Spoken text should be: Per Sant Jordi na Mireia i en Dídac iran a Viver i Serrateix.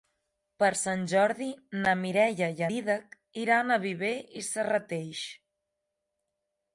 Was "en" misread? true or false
true